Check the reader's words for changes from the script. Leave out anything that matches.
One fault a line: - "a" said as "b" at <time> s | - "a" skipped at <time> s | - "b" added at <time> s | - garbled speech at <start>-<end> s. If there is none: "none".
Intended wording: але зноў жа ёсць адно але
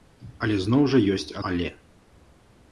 - "адно" skipped at 1.4 s